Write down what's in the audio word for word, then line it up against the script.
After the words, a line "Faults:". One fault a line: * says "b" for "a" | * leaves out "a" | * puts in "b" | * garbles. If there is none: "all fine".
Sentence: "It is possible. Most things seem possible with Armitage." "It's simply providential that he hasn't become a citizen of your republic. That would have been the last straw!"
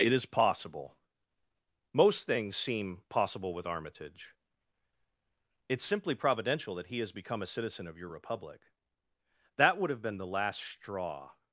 "It is possible. Most things seem possible with Armitage." "It's simply providential that he has become a citizen of your republic. That would have been the last straw!"
Faults:
* says "has" for "hasn't"